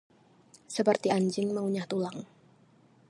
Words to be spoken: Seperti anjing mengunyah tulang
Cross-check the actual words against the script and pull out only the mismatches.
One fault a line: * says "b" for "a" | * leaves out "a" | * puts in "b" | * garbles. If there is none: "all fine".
all fine